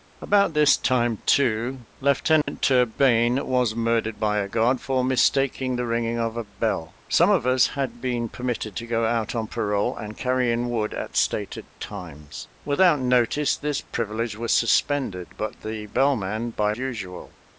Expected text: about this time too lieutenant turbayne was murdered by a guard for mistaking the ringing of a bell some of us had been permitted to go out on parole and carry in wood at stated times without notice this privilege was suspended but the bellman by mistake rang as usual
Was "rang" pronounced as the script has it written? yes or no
no